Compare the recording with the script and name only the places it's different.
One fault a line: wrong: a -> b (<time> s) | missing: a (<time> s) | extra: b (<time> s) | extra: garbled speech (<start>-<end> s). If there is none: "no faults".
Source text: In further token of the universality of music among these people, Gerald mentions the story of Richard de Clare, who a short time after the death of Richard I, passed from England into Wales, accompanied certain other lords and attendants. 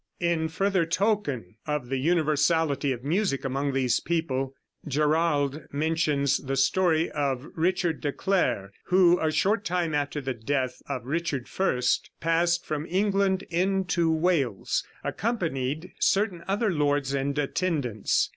no faults